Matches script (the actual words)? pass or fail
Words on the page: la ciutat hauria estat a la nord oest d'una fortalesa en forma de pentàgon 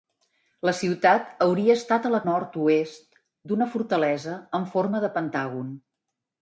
pass